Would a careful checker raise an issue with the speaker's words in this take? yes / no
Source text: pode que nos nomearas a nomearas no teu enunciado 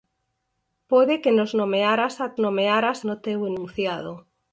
no